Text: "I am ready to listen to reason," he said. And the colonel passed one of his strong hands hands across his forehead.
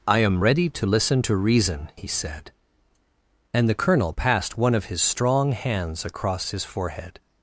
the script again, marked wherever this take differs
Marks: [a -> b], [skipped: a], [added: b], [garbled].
"I am ready to listen to reason," he said. And the colonel passed one of his strong hands [skipped: hands] across his forehead.